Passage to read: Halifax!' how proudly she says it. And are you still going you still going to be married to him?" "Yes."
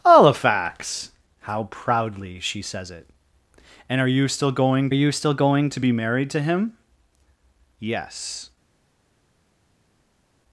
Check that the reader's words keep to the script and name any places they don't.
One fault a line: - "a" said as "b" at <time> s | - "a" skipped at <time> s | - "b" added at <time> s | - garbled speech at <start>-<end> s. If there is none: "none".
none